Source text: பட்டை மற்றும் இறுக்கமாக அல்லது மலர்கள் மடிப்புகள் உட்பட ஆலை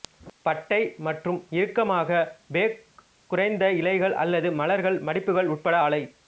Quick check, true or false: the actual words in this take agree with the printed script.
false